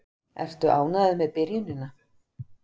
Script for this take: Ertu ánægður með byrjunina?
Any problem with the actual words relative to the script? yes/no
no